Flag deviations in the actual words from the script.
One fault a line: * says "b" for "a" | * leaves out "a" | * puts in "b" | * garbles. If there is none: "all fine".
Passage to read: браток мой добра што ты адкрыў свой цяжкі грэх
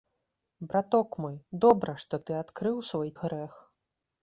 * leaves out "цяжкі"